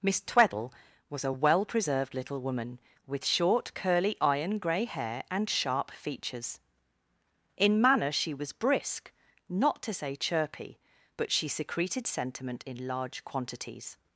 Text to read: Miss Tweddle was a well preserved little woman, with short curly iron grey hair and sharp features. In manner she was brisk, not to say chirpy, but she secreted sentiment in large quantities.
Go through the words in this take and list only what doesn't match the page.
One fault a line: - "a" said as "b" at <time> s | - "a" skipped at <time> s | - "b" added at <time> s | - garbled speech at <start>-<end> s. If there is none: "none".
none